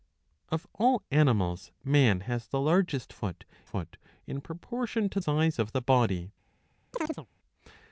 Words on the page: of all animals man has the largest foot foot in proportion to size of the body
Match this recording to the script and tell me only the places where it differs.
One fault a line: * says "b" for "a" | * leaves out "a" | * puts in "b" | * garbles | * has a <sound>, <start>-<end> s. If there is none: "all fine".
* has a chirp, 6.9-7.3 s